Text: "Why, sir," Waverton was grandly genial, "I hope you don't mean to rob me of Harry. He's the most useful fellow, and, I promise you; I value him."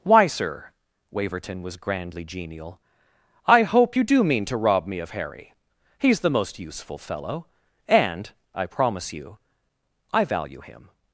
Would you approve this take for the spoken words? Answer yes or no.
no